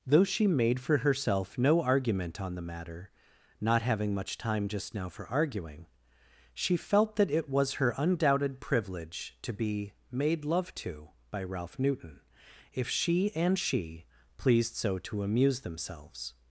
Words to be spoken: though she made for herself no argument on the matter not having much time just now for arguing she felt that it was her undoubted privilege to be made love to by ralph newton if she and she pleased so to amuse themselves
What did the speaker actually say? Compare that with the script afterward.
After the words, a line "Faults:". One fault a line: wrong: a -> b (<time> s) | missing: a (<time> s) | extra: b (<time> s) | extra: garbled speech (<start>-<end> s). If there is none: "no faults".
though she made for herself no argument on the matter not having much time just now for arguing she felt that it was her undoubted privilege to be made love to by ralph newton if she and she pleased so to amuse themselves
Faults:
no faults